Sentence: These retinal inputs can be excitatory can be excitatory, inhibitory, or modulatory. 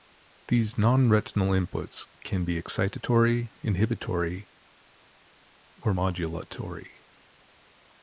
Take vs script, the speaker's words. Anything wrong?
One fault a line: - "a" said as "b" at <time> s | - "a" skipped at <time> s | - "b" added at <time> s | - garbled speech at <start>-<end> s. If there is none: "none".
- "non" added at 0.8 s
- "can be excitatory" skipped at 3.5 s